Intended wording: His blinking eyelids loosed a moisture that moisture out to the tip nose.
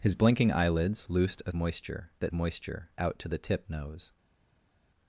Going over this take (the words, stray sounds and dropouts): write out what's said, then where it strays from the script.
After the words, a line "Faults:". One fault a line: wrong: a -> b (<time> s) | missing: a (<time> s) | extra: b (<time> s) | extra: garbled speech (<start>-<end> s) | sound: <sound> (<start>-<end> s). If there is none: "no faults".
His blinking eyelids loosed a moisture that moisture out to the tip nose.
Faults:
no faults